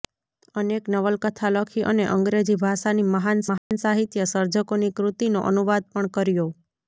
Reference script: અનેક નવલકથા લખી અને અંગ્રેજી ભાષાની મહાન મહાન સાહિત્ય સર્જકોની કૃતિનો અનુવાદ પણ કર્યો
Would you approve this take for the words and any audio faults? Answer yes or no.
no